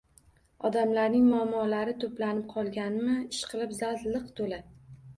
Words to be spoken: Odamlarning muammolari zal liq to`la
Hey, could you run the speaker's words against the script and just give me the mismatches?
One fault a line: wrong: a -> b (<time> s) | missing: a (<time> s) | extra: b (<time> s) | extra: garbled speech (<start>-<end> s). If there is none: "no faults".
extra: to`planib qolganmi ishqilib (2.0 s)